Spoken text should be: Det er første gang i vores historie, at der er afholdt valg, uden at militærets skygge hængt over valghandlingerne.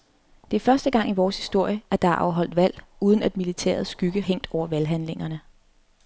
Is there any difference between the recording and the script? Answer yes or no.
no